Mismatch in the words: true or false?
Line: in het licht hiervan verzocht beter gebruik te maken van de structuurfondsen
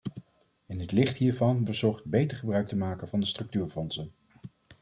false